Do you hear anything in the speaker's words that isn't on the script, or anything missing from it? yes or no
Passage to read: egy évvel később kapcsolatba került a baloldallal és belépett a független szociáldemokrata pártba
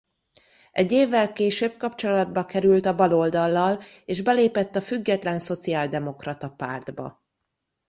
no